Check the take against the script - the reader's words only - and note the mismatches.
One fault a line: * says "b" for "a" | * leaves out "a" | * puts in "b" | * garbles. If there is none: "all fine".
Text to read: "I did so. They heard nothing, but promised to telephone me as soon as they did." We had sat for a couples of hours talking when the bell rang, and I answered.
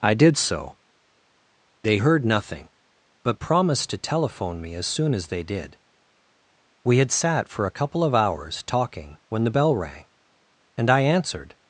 * says "couple" for "couples"